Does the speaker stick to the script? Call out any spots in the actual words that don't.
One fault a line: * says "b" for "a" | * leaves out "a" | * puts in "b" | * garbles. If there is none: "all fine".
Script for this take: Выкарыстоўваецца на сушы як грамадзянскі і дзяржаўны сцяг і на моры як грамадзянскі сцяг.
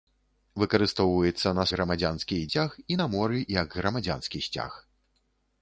* leaves out "сушы як"
* leaves out "дзяржаўны"